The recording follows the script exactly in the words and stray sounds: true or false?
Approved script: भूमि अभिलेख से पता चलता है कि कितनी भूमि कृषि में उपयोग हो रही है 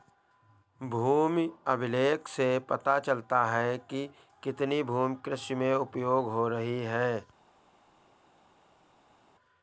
true